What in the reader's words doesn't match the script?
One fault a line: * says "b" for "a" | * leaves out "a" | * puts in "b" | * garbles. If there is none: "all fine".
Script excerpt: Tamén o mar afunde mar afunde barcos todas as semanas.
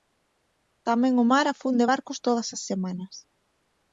* leaves out "mar afunde"